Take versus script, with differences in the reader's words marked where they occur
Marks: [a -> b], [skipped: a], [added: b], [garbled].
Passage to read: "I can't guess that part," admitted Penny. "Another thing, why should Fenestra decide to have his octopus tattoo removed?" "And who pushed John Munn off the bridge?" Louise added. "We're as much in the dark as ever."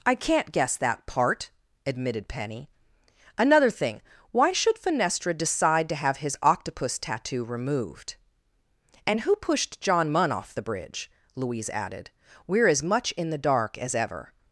"I can't guess that part," admitted Penny. "Another thing, why should Fenestra decide to have his octopus tattoo removed?" "And who pushed John Munn off the bridge?" Louise added. "We're as much in the dark as ever."